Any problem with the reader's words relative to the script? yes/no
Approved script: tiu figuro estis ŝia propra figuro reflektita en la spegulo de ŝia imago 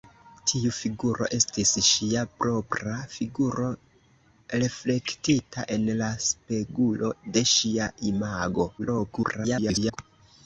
yes